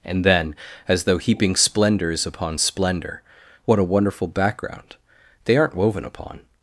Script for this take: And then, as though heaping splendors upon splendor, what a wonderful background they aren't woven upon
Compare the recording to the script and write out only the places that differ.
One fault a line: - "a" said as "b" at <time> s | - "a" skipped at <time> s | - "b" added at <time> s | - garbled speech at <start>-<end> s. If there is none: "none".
none